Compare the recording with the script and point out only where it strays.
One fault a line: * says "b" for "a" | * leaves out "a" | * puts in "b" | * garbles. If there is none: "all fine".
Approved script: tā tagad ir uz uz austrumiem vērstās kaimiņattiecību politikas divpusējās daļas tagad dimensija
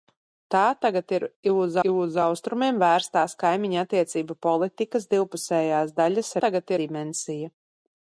all fine